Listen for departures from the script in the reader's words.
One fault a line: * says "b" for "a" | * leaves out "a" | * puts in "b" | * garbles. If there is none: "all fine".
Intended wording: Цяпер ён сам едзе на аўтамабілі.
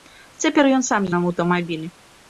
* leaves out "едзе"